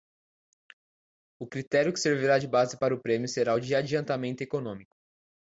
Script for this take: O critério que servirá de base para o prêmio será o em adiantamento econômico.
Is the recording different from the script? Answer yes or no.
yes